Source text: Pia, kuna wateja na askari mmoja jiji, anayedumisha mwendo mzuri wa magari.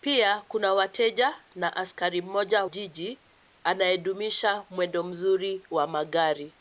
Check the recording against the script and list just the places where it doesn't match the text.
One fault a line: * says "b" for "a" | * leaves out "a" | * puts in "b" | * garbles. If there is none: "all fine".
all fine